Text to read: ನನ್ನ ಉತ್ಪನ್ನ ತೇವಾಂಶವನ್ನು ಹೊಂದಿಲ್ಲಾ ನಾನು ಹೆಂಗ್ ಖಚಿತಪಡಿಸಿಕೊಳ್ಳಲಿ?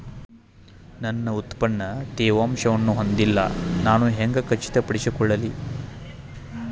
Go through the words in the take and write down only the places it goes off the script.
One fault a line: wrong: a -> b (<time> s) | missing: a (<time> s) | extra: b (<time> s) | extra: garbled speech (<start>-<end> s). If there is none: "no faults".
no faults